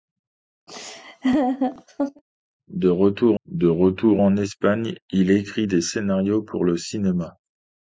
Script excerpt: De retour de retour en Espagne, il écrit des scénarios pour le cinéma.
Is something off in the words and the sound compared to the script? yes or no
yes